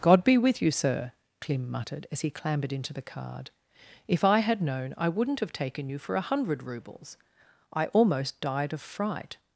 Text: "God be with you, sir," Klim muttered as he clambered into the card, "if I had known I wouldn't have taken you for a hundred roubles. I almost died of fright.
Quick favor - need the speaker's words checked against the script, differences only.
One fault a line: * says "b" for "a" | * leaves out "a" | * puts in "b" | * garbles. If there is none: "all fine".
all fine